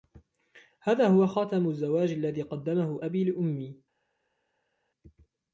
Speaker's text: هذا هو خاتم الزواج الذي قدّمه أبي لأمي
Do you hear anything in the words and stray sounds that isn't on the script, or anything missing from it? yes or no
no